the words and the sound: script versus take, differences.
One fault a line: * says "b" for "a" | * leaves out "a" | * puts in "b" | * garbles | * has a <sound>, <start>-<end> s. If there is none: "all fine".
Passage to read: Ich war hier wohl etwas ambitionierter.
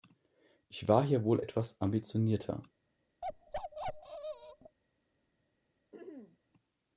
* has a bark, 3.2-4.8 s
* has a throat clearing, 5.9-6.4 s